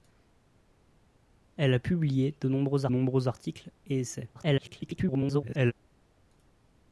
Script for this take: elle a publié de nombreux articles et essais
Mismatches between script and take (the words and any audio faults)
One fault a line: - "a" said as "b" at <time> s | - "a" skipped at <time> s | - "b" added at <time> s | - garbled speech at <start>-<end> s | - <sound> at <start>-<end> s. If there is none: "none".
- "nombreux" added at 2.9 s
- garbled speech at 4.3-5.7 s